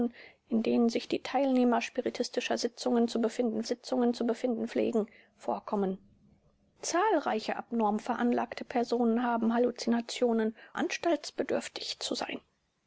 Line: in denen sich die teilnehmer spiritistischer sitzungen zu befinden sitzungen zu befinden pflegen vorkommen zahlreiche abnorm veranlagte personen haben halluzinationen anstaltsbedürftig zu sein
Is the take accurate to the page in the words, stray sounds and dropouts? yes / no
yes